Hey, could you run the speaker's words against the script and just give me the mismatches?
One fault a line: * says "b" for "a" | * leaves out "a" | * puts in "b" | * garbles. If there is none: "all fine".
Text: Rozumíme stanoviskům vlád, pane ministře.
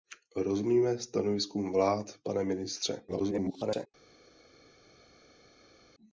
* garbles